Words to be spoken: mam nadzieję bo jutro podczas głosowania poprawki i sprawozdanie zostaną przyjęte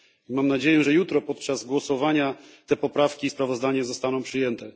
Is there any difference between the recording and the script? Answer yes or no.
yes